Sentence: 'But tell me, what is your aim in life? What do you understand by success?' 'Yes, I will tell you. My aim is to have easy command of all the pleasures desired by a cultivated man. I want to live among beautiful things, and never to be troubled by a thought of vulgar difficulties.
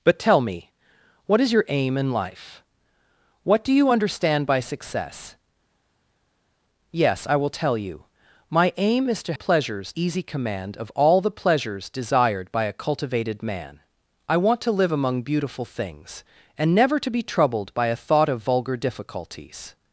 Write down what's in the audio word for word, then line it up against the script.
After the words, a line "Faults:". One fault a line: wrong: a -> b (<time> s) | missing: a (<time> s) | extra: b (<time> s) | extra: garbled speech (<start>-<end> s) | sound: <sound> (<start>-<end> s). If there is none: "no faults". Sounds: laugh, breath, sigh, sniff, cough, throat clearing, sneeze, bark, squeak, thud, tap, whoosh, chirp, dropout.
'But tell me, what is your aim in life? What do you understand by success?' 'Yes, I will tell you. My aim is to pleasures easy command of all the pleasures desired by a cultivated man. I want to live among beautiful things, and never to be troubled by a thought of vulgar difficulties.
Faults:
wrong: have -> pleasures (9.3 s)